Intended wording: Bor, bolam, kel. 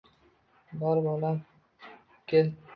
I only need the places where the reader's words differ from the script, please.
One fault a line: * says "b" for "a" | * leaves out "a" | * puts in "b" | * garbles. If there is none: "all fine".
all fine